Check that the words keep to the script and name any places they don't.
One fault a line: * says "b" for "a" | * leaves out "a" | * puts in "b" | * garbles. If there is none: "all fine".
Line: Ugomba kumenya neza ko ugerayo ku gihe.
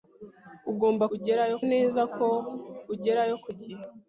* says "ugerayo" for "kumenya"